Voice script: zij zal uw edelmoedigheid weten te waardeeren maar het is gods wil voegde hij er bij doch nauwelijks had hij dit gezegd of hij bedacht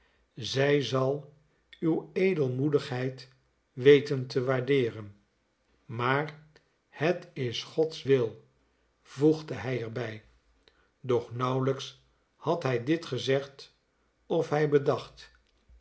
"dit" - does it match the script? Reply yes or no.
yes